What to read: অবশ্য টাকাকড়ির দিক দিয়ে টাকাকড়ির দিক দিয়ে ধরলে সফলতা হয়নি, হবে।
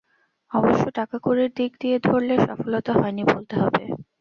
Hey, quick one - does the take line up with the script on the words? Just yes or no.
no